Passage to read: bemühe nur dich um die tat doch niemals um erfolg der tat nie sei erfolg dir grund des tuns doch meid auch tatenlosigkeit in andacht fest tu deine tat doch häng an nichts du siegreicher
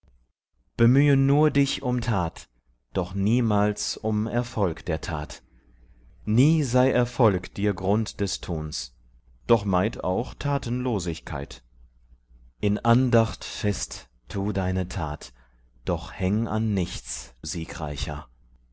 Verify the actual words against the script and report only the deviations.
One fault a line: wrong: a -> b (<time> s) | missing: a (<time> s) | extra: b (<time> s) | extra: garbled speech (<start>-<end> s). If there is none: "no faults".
missing: die (2.0 s)
missing: du (17.4 s)